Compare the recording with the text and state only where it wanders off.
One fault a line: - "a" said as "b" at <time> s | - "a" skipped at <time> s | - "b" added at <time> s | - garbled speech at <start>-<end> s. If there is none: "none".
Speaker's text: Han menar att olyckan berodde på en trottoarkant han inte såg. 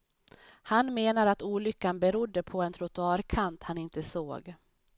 none